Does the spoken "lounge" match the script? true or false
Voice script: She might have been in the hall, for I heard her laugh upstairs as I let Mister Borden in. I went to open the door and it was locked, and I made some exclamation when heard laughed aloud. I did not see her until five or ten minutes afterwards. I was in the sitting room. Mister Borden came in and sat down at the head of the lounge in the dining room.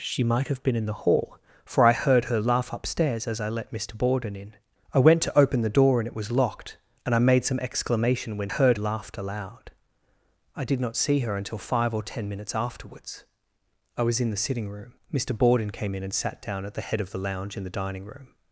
true